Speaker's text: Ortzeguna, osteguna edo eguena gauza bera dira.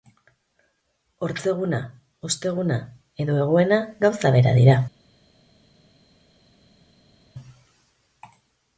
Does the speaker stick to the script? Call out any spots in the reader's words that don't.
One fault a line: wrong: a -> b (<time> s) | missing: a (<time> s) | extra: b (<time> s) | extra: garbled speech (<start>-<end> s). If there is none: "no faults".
no faults